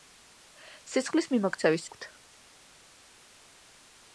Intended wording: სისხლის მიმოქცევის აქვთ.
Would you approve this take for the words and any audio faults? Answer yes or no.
yes